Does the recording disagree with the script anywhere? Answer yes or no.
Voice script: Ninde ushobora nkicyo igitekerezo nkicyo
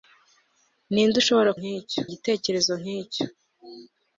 no